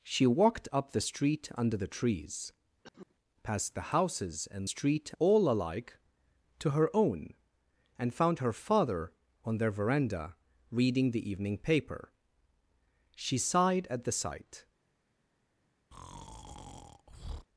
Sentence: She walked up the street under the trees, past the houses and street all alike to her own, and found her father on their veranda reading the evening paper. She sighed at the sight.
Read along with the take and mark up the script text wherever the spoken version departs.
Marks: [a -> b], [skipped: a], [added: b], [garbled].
She walked up the street under the trees, past the houses and street all alike to her own, and found her father on their veranda reading the evening paper. She sighed at the sight.